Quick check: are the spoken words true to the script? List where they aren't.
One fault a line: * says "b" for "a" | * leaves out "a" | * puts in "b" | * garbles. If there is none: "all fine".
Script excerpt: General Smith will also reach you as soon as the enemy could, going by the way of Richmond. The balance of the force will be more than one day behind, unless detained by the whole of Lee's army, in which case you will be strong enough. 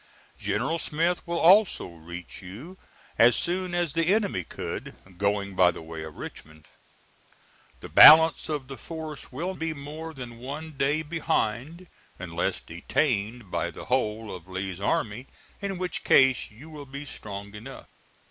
all fine